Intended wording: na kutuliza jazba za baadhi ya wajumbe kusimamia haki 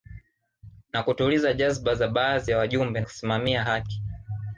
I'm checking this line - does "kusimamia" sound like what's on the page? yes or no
yes